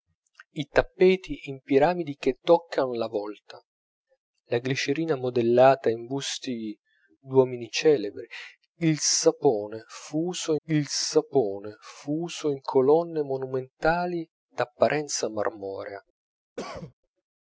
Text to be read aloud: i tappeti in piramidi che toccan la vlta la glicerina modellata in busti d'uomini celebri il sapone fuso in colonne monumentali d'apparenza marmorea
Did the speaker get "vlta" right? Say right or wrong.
right